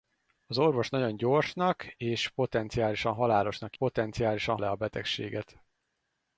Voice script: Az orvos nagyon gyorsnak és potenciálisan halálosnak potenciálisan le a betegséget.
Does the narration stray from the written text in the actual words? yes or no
no